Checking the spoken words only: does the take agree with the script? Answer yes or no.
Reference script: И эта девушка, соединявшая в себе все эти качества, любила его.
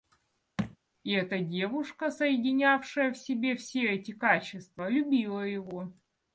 yes